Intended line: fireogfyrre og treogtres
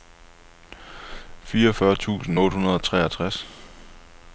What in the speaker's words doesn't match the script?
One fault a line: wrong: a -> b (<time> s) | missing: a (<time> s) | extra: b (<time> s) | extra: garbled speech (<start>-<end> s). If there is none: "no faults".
extra: tusind otte hundrede (1.9 s)